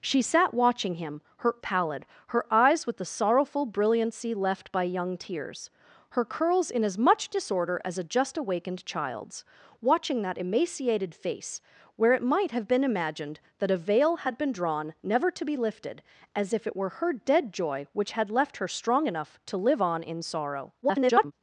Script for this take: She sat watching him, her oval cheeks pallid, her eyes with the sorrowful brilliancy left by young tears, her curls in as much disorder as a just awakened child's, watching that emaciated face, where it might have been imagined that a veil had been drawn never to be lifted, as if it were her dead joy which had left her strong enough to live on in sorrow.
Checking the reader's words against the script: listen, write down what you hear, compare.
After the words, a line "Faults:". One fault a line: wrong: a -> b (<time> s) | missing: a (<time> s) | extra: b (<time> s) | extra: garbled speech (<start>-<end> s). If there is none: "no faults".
She sat watching him, her pallid, her eyes with the sorrowful brilliancy left by young tears, her curls in as much disorder as a just awakened child's, watching that emaciated face, where it might have been imagined that a veil had been drawn never to be lifted, as if it were her dead joy which had left her strong enough to live on in sorrow. [garbled]
Faults:
missing: oval cheeks (1.6 s)
extra: garbled speech (20.8-21.3 s)